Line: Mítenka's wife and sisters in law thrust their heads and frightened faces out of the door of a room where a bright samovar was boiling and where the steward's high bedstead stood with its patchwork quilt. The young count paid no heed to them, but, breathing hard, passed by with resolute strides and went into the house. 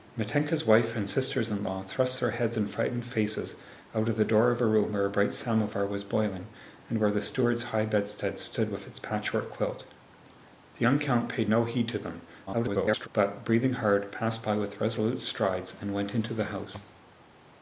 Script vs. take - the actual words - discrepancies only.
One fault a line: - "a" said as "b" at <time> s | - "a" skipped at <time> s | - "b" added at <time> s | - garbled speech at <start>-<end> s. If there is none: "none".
- garbled speech at 12.5-13.1 s